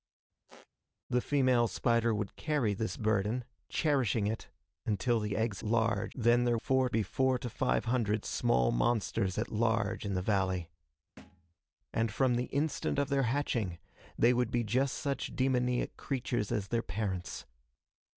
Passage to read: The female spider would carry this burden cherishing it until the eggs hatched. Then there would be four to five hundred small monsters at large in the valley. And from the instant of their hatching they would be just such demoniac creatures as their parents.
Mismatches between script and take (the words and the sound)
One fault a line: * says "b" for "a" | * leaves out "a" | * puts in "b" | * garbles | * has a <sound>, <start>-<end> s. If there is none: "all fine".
* has a squeak, 0.5-0.7 s
* says "large" for "hatched"
* says "four" for "would"
* has a thud, 11.2-11.5 s